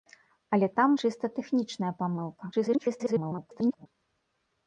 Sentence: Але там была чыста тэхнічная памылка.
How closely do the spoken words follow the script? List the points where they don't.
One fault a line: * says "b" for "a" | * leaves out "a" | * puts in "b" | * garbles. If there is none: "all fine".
* leaves out "была"
* garbles